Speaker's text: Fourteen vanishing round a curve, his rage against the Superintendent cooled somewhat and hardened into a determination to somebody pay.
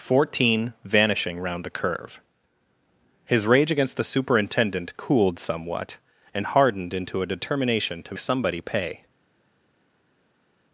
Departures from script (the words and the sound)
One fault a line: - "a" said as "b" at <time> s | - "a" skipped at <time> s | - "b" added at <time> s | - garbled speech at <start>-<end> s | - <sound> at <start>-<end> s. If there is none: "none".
none